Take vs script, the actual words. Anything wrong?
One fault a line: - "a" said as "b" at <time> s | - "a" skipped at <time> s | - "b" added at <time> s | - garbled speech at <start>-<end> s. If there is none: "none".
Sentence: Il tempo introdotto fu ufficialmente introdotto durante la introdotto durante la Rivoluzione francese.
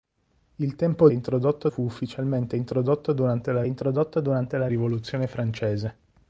none